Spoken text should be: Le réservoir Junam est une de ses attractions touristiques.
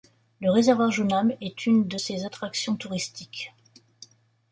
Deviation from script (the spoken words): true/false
false